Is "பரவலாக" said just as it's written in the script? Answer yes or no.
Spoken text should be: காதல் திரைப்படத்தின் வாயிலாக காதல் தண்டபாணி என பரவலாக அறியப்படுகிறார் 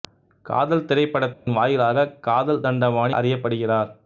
no